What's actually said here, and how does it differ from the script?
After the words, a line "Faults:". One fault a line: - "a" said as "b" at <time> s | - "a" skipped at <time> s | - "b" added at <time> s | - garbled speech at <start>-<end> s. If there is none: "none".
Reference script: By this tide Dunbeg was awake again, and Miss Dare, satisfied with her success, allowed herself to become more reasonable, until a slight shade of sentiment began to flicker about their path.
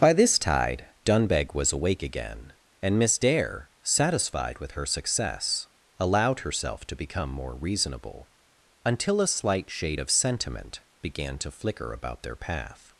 By this tide Dunbeg was awake again, and Miss Dare, satisfied with her success, allowed herself to become more reasonable, until a slight shade of sentiment began to flicker about their path.
Faults:
none